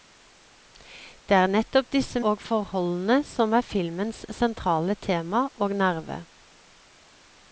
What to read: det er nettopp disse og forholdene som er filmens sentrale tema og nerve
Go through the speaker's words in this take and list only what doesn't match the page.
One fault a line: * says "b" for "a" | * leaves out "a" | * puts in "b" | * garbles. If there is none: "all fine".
all fine